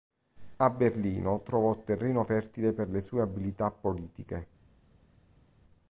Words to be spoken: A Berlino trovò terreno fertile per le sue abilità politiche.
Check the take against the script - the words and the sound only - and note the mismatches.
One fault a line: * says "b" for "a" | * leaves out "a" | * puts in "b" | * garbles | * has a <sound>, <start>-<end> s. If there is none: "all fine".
all fine